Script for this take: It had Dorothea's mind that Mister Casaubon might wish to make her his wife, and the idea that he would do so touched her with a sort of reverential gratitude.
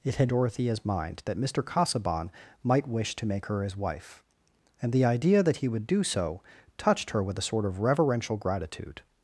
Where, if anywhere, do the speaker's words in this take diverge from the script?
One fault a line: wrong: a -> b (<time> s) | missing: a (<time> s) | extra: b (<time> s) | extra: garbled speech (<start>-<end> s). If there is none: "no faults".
no faults